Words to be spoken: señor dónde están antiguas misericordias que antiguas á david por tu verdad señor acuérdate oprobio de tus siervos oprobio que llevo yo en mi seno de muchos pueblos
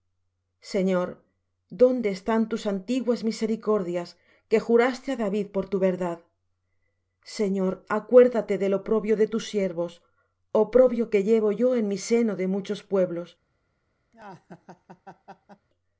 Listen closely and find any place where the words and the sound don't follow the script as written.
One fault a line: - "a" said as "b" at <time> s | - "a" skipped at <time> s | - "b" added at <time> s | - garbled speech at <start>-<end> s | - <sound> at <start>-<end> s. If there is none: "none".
- "tus" added at 2.5 s
- "antiguas" said as "juraste" at 4.7 s
- "del" added at 8.6 s
- laugh at 14.1-15.7 s